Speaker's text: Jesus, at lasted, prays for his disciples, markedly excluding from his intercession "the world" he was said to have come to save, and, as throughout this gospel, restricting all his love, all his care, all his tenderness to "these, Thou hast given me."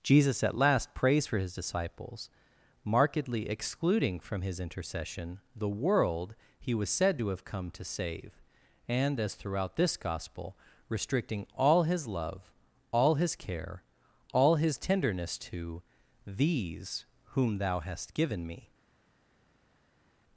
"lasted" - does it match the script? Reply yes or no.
no